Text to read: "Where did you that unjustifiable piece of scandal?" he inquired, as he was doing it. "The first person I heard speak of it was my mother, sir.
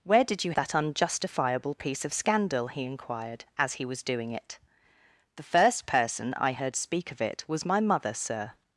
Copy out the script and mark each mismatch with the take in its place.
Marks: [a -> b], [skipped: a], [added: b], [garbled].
"Where did you that unjustifiable piece of scandal?" he inquired, as he was doing it. "The first person I heard speak of it was my mother, sir.